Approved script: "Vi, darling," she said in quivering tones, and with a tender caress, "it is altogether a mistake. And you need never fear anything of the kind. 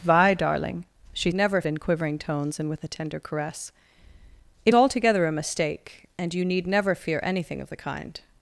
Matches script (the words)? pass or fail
fail